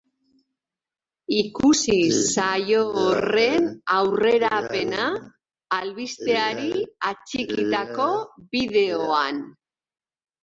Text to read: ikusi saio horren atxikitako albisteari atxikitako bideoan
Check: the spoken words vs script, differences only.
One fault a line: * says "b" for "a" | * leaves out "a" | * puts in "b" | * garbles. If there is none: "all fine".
* says "aurrerapena" for "atxikitako"